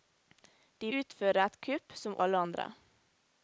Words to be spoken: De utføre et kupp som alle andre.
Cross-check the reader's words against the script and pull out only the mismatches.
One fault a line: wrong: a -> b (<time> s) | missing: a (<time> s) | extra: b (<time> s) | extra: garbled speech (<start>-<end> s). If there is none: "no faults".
no faults